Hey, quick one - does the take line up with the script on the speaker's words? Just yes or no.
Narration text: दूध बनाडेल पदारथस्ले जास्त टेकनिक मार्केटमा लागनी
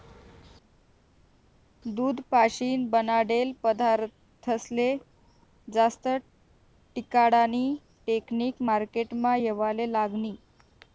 no